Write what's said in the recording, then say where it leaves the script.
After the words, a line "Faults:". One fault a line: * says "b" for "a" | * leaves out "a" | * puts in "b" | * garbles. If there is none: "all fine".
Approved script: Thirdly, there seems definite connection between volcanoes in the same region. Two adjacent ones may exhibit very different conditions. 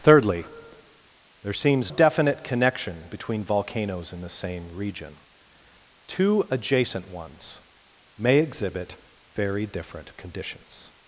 Thirdly, there seems definite connection between volcanoes in the same region. Two adjacent ones may exhibit very different conditions.
Faults:
all fine